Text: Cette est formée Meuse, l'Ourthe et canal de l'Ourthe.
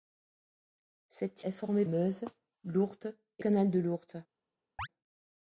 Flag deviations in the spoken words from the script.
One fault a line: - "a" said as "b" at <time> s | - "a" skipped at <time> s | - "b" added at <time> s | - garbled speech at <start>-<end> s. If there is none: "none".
none